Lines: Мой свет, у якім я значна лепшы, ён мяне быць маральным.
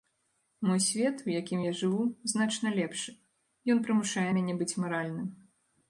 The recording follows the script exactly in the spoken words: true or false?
false